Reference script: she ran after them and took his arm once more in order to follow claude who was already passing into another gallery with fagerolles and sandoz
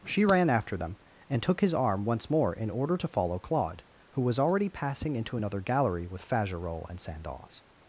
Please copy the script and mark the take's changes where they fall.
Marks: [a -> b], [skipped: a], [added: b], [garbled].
she ran after them and took his arm once more in order to follow claude who was already passing into another gallery with fagerolles and sandoz